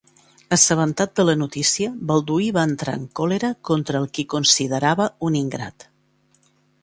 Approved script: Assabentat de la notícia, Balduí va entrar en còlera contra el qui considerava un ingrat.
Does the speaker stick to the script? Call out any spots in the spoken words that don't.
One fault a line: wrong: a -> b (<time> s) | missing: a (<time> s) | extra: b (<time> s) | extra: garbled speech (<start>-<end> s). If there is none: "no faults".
no faults